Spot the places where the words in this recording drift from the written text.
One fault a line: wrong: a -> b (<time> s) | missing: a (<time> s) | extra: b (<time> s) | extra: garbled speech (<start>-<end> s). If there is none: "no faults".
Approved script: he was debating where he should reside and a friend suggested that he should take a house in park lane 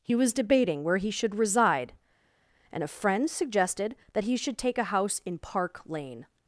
no faults